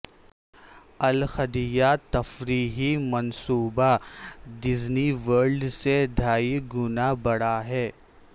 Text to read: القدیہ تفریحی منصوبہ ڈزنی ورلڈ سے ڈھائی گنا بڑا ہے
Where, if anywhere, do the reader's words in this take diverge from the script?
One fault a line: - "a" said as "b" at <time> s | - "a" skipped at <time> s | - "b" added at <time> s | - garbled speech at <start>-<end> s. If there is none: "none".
none